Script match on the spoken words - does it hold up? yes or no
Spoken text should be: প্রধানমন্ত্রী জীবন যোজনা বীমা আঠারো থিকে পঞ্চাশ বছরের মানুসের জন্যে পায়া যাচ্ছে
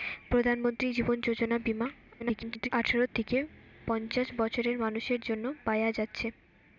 no